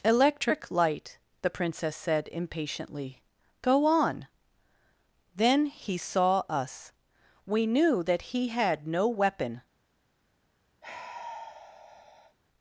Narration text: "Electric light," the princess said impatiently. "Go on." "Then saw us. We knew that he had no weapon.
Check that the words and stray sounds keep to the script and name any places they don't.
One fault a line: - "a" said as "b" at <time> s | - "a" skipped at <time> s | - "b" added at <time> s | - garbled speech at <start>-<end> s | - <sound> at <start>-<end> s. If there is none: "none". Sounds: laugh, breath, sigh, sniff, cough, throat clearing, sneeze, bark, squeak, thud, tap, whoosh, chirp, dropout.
- "he" added at 5.7 s
- sigh at 10.8-12.4 s